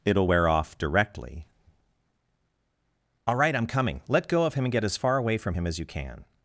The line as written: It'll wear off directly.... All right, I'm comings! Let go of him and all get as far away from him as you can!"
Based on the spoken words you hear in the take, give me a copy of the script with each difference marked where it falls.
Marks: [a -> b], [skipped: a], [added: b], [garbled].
It'll wear off directly.... All right, I'm [comings! -> coming] Let go of him and [skipped: all] get as far away from him as you can!"